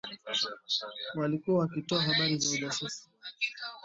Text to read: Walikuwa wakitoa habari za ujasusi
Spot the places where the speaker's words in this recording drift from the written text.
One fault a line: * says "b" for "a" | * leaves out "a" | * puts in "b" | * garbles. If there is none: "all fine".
all fine